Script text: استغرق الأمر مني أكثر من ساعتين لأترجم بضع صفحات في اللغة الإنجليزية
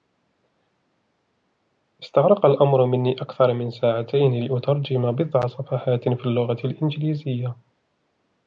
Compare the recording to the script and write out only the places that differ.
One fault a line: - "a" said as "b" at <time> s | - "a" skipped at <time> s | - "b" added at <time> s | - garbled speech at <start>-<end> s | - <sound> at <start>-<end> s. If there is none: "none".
none